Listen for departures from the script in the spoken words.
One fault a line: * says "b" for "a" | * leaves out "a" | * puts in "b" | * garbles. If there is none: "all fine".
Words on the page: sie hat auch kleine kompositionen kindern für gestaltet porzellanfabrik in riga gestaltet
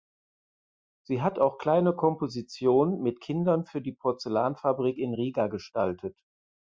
* puts in "mit"
* says "die" for "gestaltet"